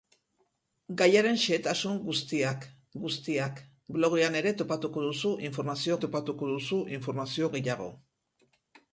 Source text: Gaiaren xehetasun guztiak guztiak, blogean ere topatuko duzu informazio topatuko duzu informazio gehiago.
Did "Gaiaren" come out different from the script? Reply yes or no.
no